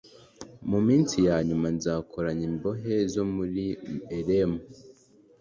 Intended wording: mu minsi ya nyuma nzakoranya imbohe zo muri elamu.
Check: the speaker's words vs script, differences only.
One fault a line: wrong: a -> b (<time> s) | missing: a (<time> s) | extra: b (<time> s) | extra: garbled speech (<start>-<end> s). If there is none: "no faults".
no faults